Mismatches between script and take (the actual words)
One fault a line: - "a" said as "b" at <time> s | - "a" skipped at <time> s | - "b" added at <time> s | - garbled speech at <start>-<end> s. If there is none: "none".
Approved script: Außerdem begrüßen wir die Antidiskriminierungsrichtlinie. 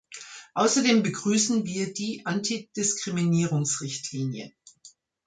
none